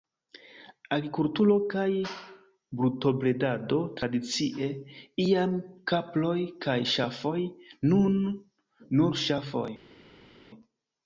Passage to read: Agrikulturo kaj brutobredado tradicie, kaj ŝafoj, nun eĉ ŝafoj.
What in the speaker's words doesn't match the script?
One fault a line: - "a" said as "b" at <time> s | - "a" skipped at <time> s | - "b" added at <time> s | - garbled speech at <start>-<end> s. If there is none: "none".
- "iam kaproj" added at 5.2 s
- "eĉ" said as "nur" at 9.0 s